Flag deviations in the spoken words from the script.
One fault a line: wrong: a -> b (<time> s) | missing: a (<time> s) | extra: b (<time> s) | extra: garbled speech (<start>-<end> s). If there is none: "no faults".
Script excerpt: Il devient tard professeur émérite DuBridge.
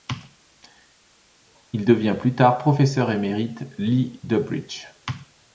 extra: plus (2.2 s)
extra: Lee (3.8 s)